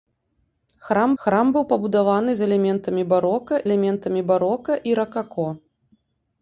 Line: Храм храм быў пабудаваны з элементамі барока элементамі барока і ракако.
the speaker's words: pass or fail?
pass